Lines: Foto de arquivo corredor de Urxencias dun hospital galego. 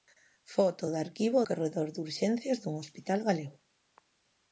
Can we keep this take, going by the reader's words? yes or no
yes